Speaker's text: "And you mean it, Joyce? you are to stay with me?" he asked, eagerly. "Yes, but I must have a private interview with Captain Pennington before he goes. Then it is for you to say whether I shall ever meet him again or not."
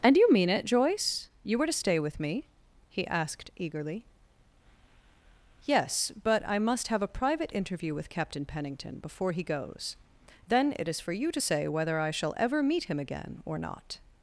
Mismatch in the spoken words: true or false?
true